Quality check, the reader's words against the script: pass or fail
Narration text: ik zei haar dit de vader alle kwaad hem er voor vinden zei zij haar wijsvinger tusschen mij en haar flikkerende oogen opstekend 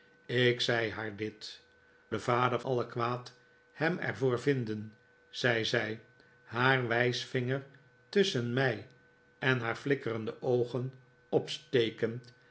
pass